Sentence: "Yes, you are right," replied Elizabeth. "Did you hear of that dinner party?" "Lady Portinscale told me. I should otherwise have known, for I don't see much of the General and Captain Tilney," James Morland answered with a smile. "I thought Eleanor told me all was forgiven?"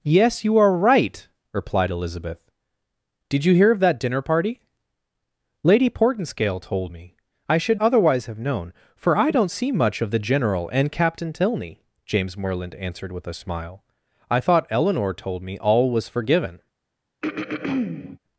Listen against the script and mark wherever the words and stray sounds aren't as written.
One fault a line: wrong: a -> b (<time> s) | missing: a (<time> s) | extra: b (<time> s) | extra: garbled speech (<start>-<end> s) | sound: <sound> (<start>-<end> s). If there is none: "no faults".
sound: throat clearing (17.2-18.2 s)